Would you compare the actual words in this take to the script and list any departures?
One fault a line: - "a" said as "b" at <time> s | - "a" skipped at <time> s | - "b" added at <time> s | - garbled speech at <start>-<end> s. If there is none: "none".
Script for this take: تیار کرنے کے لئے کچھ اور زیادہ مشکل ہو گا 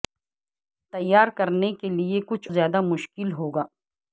- "اور" skipped at 2.5 s